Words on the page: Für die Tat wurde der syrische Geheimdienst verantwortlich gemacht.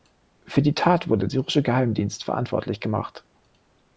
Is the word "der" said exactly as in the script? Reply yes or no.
no